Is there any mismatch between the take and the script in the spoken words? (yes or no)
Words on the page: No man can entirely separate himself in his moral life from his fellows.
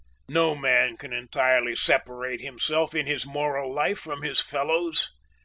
no